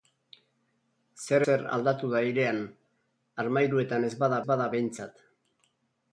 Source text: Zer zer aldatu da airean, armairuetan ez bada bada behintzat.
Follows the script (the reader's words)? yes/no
yes